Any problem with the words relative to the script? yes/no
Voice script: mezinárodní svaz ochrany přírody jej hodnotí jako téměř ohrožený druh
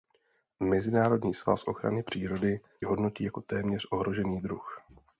yes